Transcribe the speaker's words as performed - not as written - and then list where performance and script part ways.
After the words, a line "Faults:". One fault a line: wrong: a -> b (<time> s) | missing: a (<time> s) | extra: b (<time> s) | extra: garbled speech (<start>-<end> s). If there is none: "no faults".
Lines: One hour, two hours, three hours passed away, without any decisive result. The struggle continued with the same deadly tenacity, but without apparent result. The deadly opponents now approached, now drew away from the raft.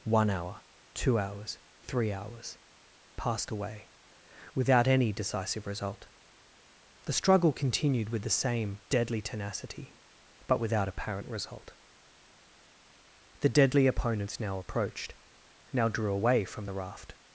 One hour, two hours, three hours passed away, without any decisive result. The struggle continued with the same deadly tenacity, but without apparent result. The deadly opponents now approached, now drew away from the raft.
Faults:
no faults